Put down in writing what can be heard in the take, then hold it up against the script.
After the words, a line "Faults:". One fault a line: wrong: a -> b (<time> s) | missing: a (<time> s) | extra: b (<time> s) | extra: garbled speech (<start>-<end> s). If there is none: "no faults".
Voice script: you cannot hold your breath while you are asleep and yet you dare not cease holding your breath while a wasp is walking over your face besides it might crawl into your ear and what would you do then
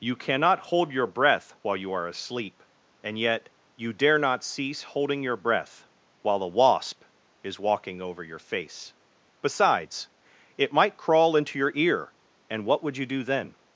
you cannot hold your breath while you are asleep and yet you dare not cease holding your breath while a wasp is walking over your face besides it might crawl into your ear and what would you do then
Faults:
no faults